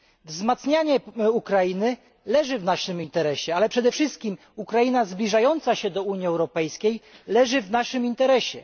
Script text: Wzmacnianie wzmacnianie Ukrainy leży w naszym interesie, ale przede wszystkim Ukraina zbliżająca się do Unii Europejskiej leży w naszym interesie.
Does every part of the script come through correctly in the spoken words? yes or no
no